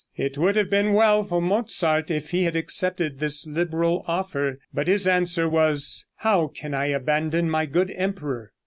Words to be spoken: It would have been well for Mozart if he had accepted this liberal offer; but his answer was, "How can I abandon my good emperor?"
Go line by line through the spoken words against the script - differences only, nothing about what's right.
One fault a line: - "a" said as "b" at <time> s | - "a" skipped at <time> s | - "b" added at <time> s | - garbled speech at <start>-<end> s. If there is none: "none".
none